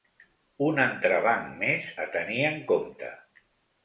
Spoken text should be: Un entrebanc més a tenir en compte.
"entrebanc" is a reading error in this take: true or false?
false